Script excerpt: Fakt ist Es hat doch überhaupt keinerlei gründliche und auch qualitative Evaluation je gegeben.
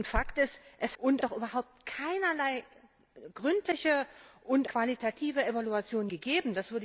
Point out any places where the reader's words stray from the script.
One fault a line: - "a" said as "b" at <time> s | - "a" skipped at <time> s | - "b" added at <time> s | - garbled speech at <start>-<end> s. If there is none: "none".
- "hat" said as "und" at 1.0 s
- "auch" skipped at 4.7 s
- "je" skipped at 6.1 s